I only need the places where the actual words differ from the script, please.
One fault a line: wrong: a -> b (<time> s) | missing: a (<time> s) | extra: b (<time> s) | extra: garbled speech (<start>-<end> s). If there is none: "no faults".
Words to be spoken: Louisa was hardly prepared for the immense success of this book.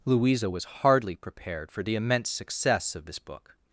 no faults